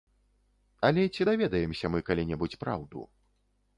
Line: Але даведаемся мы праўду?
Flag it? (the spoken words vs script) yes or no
yes